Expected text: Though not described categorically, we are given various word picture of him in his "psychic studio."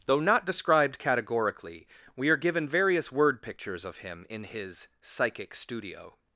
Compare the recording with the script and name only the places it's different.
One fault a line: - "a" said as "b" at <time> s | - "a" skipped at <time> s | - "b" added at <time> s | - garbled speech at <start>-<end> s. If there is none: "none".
- "picture" said as "pictures" at 3.4 s